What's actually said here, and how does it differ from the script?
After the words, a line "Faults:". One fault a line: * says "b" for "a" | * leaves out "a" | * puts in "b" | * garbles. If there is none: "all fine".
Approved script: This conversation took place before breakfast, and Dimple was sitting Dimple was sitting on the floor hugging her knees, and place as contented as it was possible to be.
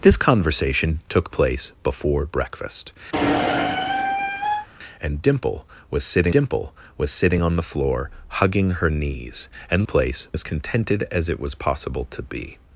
This conversation took place before breakfast, and Dimple was sitting Dimple was sitting on the floor hugging her knees, and place as contented as it was possible to be.
Faults:
all fine